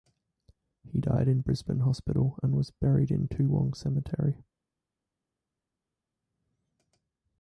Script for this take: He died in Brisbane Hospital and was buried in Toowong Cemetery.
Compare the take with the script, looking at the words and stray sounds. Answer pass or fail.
pass